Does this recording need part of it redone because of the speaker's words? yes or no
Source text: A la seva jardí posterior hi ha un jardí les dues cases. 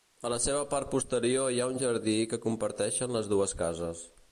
yes